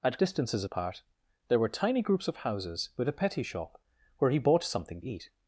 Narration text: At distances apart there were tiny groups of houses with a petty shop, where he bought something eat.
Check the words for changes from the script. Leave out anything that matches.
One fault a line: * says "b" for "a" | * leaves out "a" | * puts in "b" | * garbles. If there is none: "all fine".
all fine